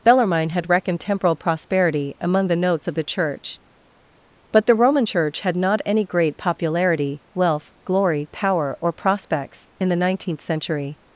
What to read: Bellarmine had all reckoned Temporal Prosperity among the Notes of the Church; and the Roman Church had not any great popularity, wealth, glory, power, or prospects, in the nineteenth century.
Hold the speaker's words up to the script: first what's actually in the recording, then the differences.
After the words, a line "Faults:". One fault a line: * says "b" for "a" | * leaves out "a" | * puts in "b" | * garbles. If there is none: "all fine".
Bellarmine had reckoned Temporal Prosperity among the Notes of the Church; but the Roman Church had not any great popularity, wealth, glory, power, or prospects, in the nineteenth century.
Faults:
* leaves out "all"
* says "but" for "and"